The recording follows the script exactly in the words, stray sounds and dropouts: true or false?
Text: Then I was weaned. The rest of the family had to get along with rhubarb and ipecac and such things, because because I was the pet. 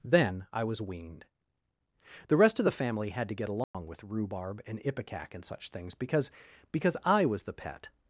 false